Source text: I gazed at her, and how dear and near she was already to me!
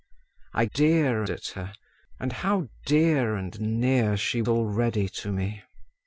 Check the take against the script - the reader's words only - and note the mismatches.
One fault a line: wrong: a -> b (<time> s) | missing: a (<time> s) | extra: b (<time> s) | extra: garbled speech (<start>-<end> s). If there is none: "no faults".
wrong: gazed -> dear (0.7 s)
missing: was (4.4 s)